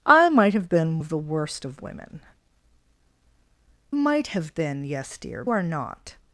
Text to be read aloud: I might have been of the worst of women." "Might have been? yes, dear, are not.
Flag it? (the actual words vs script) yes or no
no